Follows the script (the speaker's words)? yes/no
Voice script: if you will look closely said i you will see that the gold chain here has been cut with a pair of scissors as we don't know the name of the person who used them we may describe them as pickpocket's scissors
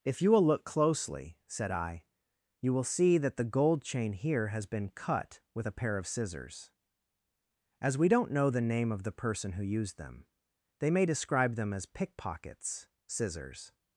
no